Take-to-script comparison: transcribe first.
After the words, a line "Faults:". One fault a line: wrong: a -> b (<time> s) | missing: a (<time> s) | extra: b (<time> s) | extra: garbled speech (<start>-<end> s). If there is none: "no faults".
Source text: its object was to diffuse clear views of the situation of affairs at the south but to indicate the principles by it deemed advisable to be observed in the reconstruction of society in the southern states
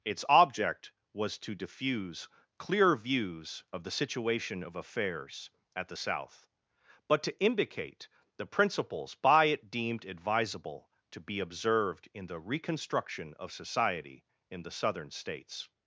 its object was to diffuse clear views of the situation of affairs at the south but to indicate the principles by it deemed advisable to be observed in the reconstruction of society in the southern states
Faults:
no faults